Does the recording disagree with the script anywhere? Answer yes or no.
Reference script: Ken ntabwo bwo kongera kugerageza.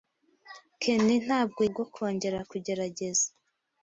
no